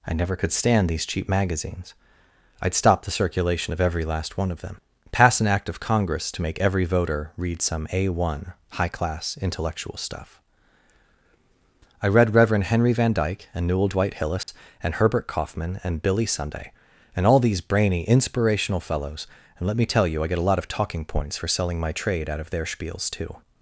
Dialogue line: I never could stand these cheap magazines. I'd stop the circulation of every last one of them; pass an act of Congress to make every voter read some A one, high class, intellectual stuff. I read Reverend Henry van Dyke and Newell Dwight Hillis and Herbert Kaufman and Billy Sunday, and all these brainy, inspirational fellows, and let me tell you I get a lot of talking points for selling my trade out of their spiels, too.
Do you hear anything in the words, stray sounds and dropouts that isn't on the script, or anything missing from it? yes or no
yes